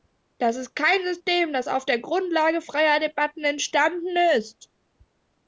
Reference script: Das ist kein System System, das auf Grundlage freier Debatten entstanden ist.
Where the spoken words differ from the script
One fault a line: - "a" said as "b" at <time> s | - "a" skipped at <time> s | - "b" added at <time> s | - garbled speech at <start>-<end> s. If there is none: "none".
- "System" skipped at 1.5 s
- "der" added at 1.8 s